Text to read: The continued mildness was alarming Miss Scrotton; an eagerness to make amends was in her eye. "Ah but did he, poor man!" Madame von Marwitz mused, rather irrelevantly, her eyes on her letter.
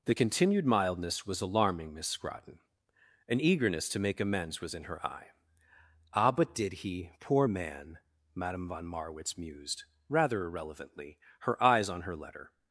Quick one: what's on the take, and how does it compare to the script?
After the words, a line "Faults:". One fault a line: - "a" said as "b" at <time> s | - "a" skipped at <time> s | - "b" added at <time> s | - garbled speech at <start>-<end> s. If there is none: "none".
The continued mildness was alarming Miss Scrotton; an eagerness to make amends was in her eye. "Ah but did he, poor man!" Madame von Marwitz mused, rather irrelevantly, her eyes on her letter.
Faults:
none